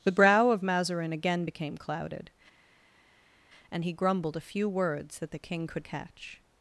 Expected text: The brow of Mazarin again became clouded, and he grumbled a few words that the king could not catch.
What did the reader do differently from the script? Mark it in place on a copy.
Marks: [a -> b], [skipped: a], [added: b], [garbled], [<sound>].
The brow of Mazarin again became clouded, and he grumbled a few words that the king could [skipped: not] catch.